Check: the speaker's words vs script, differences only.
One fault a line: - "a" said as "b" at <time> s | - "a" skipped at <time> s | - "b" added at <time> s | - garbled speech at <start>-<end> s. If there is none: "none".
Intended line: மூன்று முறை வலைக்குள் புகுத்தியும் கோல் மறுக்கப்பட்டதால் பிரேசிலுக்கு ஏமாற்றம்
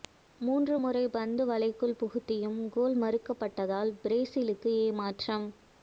- "பந்தை" added at 1.1 s